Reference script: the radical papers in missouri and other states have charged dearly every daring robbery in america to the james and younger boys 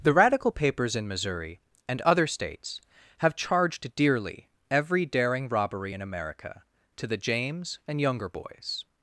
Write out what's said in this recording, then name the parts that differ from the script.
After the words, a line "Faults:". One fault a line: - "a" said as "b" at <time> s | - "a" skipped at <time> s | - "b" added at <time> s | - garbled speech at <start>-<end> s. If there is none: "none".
the radical papers in missouri and other states have charged dearly every daring robbery in america to the james and younger boys
Faults:
none